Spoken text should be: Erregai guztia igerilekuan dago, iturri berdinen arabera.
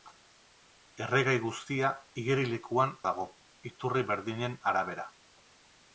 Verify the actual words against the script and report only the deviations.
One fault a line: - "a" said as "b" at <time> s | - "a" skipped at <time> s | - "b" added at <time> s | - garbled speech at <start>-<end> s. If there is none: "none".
none